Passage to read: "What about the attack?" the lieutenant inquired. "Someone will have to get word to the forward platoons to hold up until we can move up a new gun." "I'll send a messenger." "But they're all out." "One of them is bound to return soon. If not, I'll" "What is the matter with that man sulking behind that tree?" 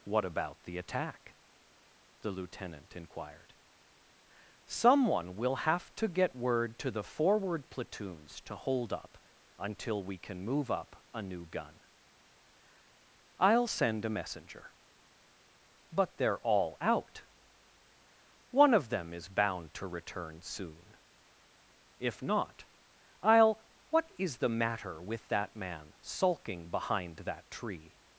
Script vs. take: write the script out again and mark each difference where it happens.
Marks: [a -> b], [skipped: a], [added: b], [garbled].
"What about the attack?" the lieutenant inquired. "Someone will have to get word to the forward platoons to hold up until we can move up a new gun." "I'll send a messenger." "But they're all out." "One of them is bound to return soon. If not, I'll" "What is the matter with that man sulking behind that tree?"